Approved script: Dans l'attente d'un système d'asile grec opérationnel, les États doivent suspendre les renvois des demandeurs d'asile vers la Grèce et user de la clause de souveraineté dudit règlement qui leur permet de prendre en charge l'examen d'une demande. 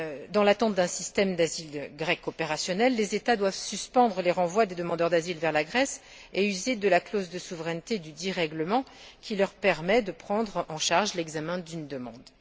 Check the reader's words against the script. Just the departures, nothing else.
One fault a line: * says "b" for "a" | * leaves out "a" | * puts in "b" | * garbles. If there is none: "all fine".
all fine